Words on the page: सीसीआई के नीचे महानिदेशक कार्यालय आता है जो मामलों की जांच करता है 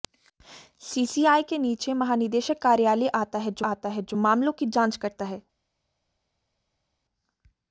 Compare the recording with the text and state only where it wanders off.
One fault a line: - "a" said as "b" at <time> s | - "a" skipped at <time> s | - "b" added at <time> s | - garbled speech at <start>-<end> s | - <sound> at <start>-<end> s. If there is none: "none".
- "आता है जो" added at 3.6 s